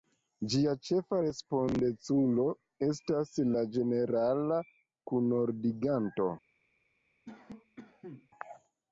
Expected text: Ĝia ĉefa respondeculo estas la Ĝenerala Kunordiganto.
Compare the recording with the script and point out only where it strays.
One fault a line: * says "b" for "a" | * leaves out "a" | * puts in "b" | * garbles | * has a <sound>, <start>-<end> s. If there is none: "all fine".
* has a cough, 7.3-8.3 s